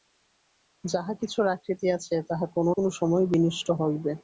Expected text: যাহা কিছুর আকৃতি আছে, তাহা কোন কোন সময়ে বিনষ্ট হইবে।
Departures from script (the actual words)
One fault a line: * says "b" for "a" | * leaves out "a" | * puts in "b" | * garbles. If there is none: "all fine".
all fine